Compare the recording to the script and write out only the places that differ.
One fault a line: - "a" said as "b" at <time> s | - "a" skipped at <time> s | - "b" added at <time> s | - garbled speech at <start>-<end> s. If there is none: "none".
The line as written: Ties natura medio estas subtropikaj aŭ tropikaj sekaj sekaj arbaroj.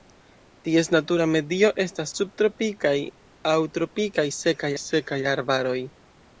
none